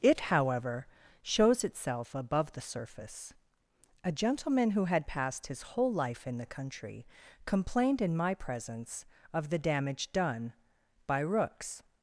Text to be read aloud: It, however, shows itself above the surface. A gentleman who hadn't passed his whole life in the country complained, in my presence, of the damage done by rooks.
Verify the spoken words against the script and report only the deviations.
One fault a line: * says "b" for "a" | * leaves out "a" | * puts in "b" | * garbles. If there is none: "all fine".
* says "had" for "hadn't"